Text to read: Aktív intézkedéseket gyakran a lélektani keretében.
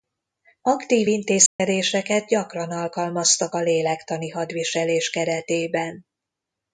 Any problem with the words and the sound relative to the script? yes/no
yes